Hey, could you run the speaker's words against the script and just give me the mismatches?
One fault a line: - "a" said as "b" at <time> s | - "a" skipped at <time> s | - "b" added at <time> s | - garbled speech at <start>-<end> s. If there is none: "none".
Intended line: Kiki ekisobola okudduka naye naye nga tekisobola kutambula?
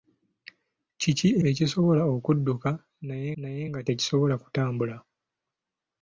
none